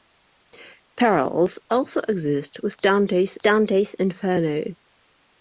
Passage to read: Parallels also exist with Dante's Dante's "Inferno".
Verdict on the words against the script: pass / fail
pass